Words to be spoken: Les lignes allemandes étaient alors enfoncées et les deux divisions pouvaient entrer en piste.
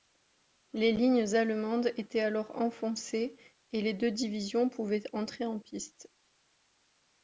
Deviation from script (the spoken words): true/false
false